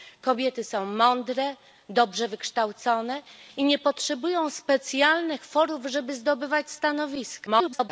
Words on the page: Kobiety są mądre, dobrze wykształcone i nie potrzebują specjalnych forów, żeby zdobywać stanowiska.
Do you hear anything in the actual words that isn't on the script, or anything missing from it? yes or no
yes